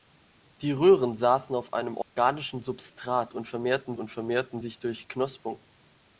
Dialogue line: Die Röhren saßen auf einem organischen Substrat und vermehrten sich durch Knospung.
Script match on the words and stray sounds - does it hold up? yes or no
no